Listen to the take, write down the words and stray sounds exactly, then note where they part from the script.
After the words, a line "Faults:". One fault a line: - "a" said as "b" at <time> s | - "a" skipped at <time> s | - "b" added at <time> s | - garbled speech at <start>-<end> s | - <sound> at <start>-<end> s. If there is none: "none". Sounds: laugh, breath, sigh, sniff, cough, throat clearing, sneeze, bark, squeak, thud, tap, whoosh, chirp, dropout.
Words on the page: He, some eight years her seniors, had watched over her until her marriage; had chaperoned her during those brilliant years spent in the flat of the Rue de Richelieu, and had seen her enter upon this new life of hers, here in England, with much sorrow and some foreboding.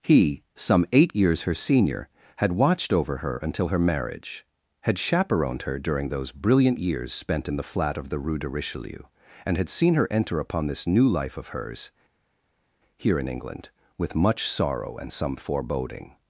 He, some eight years her senior, had watched over her until her marriage; had chaperoned her during those brilliant years spent in the flat of the Rue de Richelieu, and had seen her enter upon this new life of hers, here in England, with much sorrow and some foreboding.
Faults:
- "seniors" said as "senior" at 1.5 s